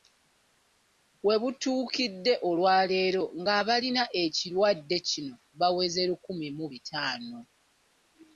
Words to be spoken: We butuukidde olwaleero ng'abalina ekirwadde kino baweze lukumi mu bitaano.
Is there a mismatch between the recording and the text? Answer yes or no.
no